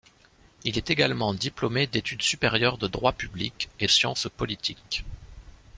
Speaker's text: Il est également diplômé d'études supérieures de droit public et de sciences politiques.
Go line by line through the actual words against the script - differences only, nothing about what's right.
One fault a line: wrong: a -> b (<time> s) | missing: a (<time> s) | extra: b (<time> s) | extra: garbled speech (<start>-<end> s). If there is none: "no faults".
missing: de (3.9 s)